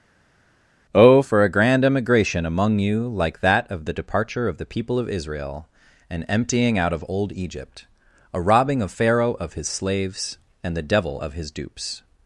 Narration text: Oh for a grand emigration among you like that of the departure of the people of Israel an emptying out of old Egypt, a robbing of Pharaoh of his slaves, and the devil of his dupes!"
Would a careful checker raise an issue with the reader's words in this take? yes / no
no